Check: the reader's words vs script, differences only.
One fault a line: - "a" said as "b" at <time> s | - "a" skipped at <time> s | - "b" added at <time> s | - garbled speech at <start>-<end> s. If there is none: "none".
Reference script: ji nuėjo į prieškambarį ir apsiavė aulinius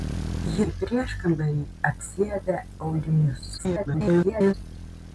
- "nuėjo" skipped at 0.6 s
- "ir" skipped at 1.6 s
- garbled speech at 3.6-4.5 s